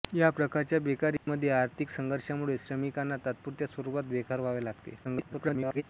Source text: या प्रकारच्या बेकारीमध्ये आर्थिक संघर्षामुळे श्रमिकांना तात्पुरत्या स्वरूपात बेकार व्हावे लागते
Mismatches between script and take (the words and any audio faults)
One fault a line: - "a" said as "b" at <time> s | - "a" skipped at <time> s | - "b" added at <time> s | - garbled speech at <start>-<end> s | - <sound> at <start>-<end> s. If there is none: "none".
- dropout at 1.2-1.3 s
- garbled speech at 5.0-5.8 s